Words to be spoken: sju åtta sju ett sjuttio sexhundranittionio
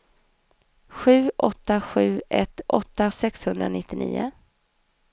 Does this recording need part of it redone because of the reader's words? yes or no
yes